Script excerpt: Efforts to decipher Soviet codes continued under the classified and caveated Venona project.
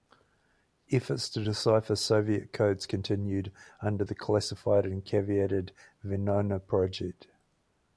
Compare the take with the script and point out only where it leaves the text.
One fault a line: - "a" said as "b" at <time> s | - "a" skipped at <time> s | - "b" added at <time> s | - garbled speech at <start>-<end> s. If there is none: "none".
none